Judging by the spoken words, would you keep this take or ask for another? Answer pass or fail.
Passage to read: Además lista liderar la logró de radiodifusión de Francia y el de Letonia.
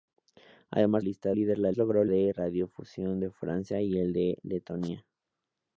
pass